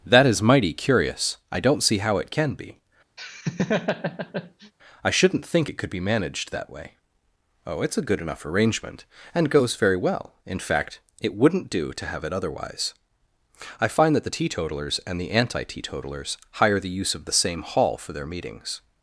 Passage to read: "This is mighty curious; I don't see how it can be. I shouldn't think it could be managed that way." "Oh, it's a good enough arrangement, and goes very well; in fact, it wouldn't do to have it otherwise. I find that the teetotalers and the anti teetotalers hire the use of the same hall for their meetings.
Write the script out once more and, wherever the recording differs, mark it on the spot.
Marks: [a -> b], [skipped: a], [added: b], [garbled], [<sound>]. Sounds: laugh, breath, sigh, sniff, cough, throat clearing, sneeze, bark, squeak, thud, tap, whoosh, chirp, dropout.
["This -> That] is mighty curious; I don't see how it can be. [laugh] I shouldn't think it could be managed that way." "Oh, it's a good enough arrangement, and goes very well; in fact, it wouldn't do to have it otherwise. I find that the teetotalers and the anti teetotalers hire the use of the same hall for their meetings.